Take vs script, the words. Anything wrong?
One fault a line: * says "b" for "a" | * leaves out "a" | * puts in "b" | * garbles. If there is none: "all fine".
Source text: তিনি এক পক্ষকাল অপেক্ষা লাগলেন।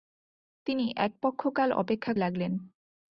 all fine